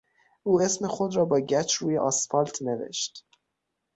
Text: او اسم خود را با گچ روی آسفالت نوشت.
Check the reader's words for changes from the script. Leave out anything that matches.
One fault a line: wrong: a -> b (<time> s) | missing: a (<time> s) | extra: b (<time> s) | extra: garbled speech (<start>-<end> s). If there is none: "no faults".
no faults